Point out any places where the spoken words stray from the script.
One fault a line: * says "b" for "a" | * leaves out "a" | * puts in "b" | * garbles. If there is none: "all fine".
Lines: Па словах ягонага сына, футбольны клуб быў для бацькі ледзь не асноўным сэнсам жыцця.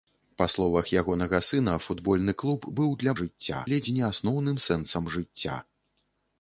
* says "жыцця" for "бацькі"